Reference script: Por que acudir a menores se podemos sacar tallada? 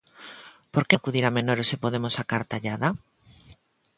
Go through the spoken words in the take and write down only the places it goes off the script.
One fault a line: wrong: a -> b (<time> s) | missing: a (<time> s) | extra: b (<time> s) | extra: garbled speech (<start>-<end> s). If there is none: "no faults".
no faults